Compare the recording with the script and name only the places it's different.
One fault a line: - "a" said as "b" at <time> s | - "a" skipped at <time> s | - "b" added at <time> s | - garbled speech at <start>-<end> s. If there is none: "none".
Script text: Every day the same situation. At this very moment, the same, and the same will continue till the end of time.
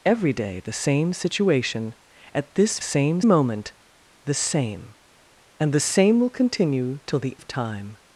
- "very" said as "same" at 2.8 s
- "end" skipped at 7.4 s